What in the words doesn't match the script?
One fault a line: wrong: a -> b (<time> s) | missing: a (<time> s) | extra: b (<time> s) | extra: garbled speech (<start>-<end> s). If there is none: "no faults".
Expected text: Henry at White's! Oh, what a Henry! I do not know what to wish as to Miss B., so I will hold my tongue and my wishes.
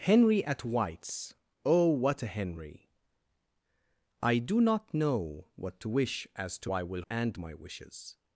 missing: Miss B so (6.7 s)
missing: hold my tongue (7.0 s)